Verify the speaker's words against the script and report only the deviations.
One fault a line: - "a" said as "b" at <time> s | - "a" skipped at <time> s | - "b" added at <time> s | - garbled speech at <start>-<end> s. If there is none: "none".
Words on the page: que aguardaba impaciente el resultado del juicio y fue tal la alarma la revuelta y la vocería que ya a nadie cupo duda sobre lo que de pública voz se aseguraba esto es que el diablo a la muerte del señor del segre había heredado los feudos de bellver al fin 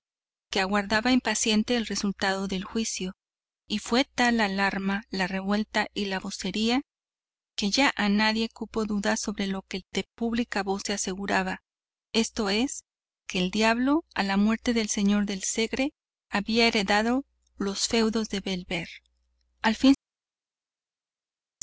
none